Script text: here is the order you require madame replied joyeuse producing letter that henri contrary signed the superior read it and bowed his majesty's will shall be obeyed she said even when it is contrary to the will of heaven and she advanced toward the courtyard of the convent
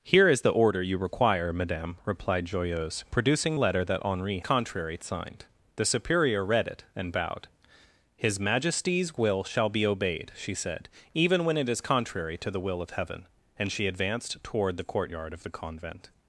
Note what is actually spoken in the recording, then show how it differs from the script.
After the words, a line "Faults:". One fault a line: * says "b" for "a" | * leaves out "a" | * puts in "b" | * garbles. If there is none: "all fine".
here is the order you require madame replied joyeuse producing letter that henri contrary signed the superior read it and bowed his majesty's will shall be obeyed she said even when it is contrary to the will of heaven and she advanced toward the courtyard of the convent
Faults:
all fine